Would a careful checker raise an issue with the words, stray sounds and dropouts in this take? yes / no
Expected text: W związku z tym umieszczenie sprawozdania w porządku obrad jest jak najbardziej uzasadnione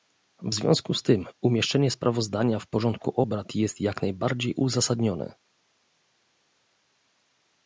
no